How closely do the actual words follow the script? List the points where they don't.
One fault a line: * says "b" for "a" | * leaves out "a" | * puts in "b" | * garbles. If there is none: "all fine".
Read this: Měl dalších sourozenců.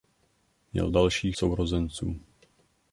all fine